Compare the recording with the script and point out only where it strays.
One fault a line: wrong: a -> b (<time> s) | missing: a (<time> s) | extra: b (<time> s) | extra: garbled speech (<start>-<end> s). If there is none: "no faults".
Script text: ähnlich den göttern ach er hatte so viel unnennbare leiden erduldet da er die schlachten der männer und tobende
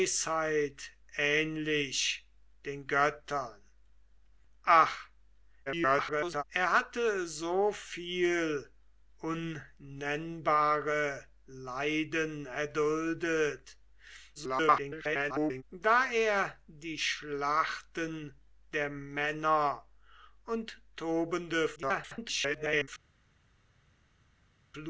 extra: garbled speech (5.7-6.4 s)
extra: garbled speech (14.3-15.6 s)
extra: garbled speech (21.8-22.9 s)